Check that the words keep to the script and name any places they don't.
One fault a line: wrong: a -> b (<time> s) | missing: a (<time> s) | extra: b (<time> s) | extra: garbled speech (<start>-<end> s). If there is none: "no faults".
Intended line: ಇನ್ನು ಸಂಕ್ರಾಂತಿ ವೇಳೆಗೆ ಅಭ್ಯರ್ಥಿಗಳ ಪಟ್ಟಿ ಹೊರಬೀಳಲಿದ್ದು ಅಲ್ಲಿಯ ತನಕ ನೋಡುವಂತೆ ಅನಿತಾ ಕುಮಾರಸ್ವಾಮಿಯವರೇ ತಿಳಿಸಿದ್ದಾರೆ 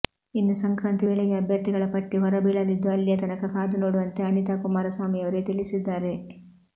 extra: ಕಾದು (3.5 s)